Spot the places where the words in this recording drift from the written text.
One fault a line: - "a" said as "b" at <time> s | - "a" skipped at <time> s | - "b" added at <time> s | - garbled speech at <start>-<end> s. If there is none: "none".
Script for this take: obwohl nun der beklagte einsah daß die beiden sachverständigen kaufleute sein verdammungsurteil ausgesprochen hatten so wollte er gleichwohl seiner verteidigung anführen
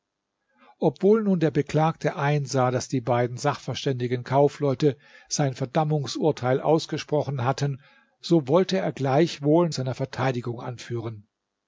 none